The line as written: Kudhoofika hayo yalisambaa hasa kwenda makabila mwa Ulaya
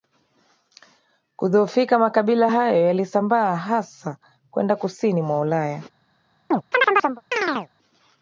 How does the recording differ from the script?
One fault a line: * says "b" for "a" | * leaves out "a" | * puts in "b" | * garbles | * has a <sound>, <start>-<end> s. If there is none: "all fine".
* puts in "makabila"
* says "kusini" for "makabila"
* has a chirp, 6.5-7.7 s